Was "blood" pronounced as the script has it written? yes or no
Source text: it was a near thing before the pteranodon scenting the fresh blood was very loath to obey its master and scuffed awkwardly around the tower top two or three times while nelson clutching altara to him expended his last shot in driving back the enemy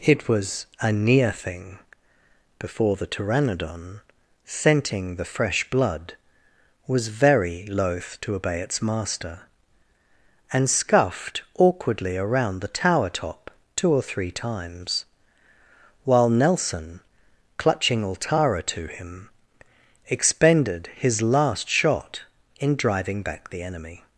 yes